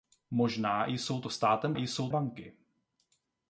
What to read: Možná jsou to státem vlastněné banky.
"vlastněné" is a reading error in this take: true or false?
true